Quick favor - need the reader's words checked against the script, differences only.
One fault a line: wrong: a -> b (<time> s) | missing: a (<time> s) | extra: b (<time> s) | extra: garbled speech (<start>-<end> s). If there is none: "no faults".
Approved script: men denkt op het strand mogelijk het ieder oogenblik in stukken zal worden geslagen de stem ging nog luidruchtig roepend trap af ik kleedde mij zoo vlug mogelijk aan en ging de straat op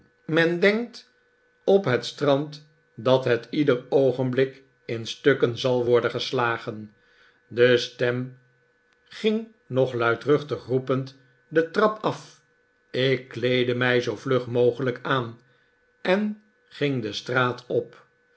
wrong: mogelijk -> dat (3.0 s)
extra: de (11.5 s)